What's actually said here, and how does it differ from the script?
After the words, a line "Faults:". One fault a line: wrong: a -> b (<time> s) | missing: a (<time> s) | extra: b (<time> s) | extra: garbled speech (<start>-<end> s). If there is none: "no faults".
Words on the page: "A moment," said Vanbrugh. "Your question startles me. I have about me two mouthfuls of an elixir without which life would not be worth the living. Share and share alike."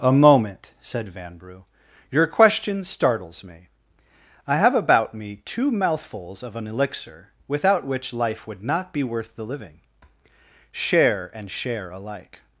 "A moment," said Vanbrugh. "Your question startles me. I have about me two mouthfuls of an elixir without which life would not be worth the living. Share and share alike."
Faults:
no faults